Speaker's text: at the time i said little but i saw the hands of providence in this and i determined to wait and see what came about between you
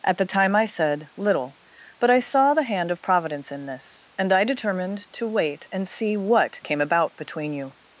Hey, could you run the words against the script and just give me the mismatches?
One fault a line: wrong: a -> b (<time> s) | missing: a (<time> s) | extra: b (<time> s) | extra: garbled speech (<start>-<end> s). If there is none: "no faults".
wrong: hands -> hand (2.6 s)